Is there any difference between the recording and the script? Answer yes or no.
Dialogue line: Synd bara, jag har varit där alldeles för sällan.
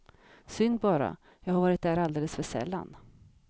no